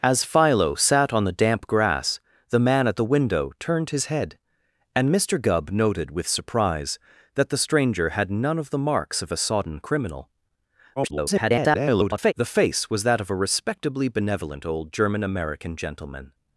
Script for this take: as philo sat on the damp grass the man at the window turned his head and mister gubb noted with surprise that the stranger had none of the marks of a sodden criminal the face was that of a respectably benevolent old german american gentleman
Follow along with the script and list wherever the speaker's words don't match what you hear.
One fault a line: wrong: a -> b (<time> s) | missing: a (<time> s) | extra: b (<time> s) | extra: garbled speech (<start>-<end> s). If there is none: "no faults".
extra: garbled speech (11.0-12.3 s)